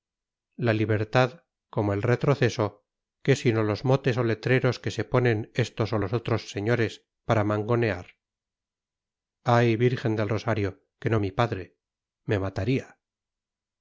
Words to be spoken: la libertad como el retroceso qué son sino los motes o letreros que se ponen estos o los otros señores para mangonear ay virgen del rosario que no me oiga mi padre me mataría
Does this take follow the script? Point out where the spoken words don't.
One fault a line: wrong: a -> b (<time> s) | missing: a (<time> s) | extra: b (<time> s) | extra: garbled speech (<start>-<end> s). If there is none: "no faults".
missing: son (3.4 s)
missing: me oiga (11.2 s)